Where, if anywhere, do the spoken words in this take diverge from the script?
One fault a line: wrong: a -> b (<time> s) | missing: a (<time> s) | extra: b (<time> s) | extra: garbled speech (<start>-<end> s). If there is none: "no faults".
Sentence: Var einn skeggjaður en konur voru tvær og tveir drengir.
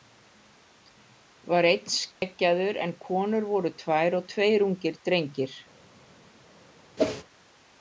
extra: ungir (4.7 s)